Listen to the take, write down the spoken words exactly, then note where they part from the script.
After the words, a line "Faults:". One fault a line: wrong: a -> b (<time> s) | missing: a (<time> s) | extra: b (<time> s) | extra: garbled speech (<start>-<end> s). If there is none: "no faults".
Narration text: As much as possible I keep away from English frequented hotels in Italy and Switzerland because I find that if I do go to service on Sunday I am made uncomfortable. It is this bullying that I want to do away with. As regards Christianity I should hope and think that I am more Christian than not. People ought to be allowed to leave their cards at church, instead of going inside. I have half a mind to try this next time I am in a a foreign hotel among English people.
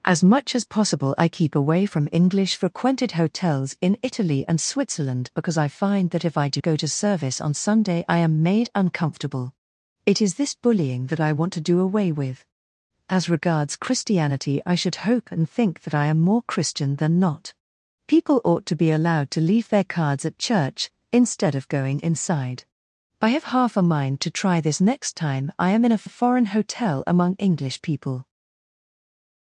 As much as possible I keep away from English frequented hotels in Italy and Switzerland because I find that if I do go to service on Sunday I am made uncomfortable. It is this bullying that I want to do away with. As regards Christianity I should hope and think that I am more Christian than not. People ought to be allowed to leave their cards at church, instead of going inside. I have half a mind to try this next time I am in a a foreign hotel among English people.
Faults:
no faults